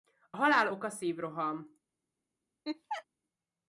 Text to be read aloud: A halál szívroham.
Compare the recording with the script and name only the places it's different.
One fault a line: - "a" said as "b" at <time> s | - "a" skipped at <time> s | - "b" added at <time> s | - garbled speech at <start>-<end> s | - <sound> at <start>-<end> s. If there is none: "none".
- "oka" added at 0.7 s
- laugh at 2.6-3.0 s